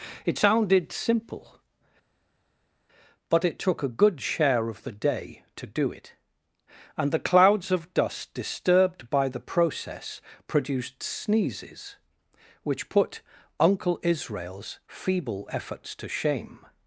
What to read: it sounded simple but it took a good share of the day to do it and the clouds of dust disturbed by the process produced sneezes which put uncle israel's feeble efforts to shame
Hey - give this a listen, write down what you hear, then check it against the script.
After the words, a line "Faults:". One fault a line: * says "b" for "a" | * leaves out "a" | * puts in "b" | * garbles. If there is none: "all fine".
it sounded simple but it took a good share of the day to do it and the clouds of dust disturbed by the process produced sneezes which put uncle israel's feeble efforts to shame
Faults:
all fine